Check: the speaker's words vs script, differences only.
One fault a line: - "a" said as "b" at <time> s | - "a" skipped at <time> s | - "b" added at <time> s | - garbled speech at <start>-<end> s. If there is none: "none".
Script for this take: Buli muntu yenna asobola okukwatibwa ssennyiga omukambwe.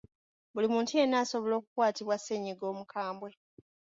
none